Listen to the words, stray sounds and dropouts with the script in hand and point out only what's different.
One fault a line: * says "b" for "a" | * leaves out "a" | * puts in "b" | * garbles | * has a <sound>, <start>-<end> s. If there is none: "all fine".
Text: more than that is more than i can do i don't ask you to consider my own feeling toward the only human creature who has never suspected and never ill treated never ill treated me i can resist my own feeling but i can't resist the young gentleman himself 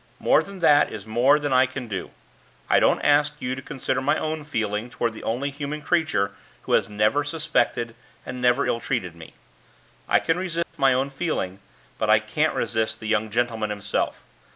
* leaves out "never ill treated"
* has a dropout, 10.6-10.7 s